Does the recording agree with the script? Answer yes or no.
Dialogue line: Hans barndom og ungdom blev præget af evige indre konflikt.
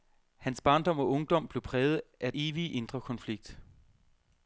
yes